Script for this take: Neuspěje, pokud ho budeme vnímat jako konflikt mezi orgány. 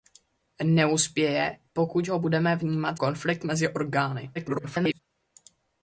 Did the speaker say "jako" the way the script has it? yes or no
no